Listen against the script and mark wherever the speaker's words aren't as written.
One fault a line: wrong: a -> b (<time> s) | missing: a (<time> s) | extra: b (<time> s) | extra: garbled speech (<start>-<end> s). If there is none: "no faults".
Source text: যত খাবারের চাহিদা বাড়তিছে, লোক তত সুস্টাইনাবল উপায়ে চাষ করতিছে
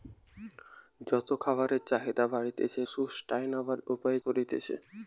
missing: লোক তত (2.8 s)
missing: চাষ (4.2 s)